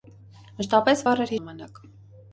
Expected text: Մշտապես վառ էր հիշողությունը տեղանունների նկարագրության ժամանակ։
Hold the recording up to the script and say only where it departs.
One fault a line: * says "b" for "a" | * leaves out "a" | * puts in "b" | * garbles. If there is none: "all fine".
* leaves out "հիշողությունը տեղանունների նկարագրության"